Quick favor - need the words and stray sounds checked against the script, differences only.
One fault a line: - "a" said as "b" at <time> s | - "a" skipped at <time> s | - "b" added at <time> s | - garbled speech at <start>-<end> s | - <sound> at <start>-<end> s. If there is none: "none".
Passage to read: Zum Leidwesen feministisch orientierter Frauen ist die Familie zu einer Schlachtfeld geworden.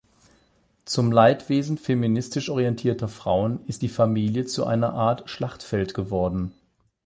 - "Art" added at 4.9 s